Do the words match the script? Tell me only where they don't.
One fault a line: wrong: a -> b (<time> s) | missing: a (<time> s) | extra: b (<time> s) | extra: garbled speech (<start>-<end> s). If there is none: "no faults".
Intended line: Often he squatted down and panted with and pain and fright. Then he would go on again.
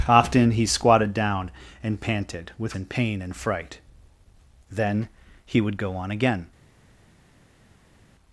no faults